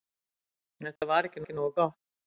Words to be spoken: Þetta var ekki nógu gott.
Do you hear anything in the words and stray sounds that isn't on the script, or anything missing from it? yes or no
yes